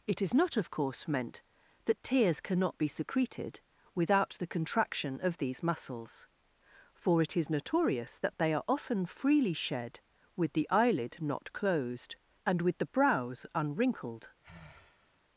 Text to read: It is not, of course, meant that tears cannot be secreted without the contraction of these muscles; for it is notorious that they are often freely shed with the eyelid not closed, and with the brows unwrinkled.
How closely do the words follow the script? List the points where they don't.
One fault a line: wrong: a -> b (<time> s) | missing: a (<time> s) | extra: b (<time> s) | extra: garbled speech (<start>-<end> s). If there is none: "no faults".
no faults